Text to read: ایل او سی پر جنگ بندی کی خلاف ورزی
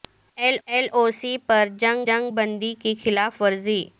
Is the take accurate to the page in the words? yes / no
no